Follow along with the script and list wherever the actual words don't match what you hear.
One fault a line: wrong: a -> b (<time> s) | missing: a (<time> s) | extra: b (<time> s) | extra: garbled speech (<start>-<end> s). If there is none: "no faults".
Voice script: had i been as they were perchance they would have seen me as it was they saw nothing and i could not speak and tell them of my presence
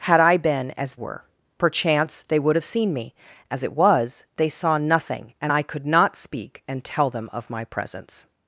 missing: they (0.9 s)